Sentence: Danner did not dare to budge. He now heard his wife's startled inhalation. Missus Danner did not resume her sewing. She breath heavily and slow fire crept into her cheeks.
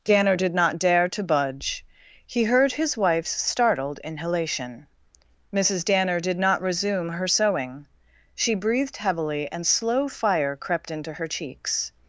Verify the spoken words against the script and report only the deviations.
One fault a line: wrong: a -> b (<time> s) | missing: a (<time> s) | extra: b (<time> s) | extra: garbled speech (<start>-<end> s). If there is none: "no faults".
missing: now (2.5 s)
wrong: breath -> breathed (8.5 s)